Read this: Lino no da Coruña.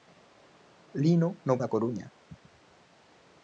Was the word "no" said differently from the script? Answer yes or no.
no